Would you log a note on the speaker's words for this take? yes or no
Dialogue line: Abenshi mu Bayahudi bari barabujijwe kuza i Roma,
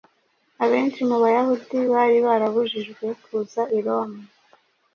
no